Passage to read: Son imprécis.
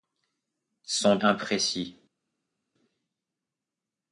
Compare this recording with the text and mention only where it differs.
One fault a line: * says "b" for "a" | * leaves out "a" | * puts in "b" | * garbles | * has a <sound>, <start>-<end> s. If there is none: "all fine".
all fine